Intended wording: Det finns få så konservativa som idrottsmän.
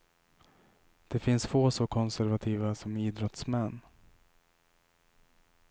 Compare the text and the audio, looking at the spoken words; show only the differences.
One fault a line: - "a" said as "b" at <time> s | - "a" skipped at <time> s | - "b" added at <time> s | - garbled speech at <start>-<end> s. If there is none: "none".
none